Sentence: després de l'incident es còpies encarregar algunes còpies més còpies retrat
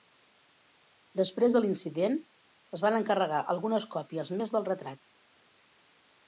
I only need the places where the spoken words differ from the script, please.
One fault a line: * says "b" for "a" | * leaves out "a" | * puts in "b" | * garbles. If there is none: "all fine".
* says "van" for "còpies"
* says "del" for "còpies"